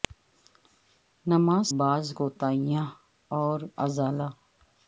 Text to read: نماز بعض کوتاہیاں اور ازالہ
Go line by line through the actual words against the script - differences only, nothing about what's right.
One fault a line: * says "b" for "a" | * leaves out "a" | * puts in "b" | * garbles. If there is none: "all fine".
all fine